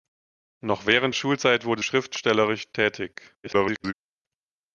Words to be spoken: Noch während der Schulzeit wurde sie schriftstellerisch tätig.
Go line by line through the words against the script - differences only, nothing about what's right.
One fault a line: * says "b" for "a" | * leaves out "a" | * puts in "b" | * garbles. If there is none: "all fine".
* leaves out "der"
* leaves out "sie"
* garbles